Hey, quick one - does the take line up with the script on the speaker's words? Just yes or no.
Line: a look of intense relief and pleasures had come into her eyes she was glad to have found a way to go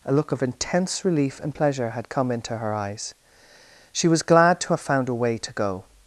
no